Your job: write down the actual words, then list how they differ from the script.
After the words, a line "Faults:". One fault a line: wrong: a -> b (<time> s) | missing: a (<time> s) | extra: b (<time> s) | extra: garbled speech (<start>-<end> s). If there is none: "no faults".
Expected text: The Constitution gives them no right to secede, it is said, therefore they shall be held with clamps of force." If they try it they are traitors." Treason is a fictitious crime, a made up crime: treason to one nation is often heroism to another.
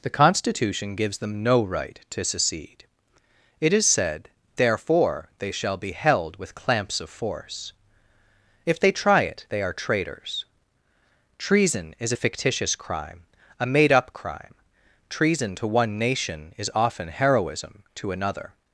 The Constitution gives them no right to secede, it is said, therefore they shall be held with clamps of force." If they try it they are traitors." Treason is a fictitious crime, a made up crime: treason to one nation is often heroism to another.
Faults:
no faults